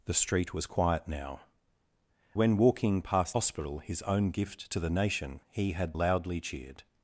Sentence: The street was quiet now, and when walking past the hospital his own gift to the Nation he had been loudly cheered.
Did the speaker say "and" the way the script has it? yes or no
no